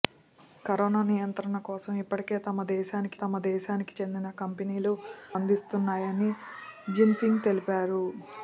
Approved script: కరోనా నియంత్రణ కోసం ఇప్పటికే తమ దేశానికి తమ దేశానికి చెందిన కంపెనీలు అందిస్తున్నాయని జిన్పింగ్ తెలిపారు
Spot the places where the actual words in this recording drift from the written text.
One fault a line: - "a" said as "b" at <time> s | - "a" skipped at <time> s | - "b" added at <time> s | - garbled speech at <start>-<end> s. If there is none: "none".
none